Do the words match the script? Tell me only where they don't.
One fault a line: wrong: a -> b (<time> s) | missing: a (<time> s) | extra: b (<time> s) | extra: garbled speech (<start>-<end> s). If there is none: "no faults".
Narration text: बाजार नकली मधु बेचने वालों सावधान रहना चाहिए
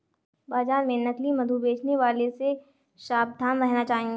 extra: में (0.8 s)
extra: से (2.3 s)